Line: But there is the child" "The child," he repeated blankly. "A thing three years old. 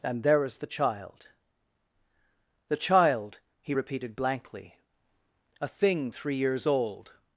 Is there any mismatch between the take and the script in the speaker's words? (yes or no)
yes